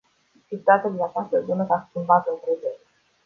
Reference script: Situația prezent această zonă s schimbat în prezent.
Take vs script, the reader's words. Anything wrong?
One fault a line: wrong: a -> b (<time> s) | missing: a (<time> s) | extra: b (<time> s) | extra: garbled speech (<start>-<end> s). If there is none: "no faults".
wrong: prezent -> din (0.9 s)
extra: a (1.7 s)